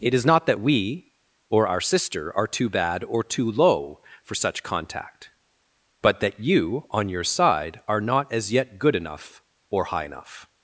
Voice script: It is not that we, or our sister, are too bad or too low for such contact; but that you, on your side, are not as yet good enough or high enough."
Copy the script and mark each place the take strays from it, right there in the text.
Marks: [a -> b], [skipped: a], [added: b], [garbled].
It is not that we, or our sister, are too bad or too low for such contact; but that you, on your side, are not as yet good enough or high enough."